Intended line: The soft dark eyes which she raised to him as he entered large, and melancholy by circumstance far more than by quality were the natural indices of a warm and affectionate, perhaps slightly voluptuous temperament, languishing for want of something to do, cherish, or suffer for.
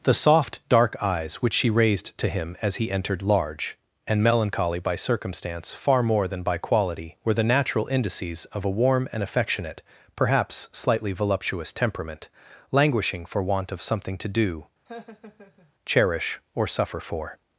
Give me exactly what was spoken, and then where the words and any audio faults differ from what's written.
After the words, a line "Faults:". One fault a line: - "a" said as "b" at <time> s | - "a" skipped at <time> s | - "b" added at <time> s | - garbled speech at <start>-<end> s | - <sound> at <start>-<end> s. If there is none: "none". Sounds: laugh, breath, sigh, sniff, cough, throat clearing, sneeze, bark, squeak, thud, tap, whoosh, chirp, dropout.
The soft dark eyes which she raised to him as he entered large, and melancholy by circumstance far more than by quality were the natural indices of a warm and affectionate, perhaps slightly voluptuous temperament, languishing for want of something to do, cherish, or suffer for.
Faults:
- laugh at 14.9-15.7 s